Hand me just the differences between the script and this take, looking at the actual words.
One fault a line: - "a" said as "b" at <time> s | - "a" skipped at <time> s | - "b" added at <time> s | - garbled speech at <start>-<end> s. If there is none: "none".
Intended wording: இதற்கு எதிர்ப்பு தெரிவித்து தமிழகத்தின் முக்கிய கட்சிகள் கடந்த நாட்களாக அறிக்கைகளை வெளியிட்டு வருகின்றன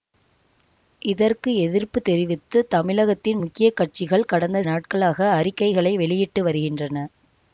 none